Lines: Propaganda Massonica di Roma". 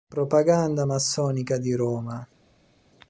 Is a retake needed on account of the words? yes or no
no